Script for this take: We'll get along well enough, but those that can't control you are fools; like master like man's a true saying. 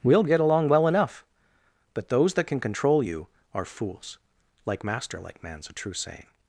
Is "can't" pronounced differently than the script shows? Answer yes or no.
yes